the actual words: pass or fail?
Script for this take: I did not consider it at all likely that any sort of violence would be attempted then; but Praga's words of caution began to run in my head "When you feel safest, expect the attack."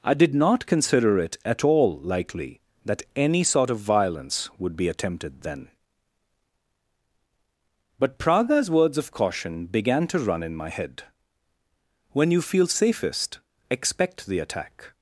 pass